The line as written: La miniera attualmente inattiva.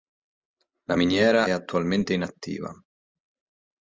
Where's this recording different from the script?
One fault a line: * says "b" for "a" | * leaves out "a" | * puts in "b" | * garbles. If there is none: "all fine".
all fine